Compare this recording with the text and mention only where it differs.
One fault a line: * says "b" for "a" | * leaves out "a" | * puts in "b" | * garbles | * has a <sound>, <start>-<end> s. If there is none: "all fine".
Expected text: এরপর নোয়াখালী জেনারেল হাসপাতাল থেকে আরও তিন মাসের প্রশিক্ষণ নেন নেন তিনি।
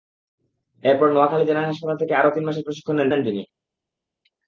all fine